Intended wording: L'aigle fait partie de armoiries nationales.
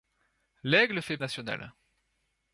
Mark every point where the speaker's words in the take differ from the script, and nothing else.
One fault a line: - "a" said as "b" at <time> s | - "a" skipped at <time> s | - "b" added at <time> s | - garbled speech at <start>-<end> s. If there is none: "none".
- "partie de armoiries" skipped at 1.2 s